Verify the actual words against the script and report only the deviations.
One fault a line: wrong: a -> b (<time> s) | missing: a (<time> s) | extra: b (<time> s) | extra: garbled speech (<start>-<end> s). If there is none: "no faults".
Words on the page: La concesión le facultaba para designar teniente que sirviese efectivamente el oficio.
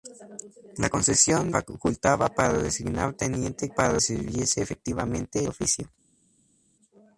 missing: le (1.5 s)
wrong: que -> para (3.7 s)
missing: el (5.4 s)